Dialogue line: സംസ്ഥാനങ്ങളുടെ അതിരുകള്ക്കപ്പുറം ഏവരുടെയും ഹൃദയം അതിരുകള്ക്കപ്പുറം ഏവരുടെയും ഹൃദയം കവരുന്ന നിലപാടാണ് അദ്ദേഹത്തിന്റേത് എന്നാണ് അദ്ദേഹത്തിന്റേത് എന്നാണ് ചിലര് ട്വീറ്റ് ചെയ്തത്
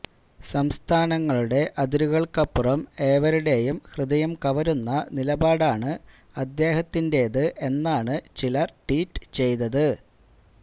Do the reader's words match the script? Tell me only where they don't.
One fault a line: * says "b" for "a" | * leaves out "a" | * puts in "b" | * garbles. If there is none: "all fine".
* leaves out "അതിരുകള്ക്കപ്പുറം ഏവരുടെയും ഹൃദയം"
* leaves out "അദ്ദേഹത്തിന്റേത് എന്നാണ്"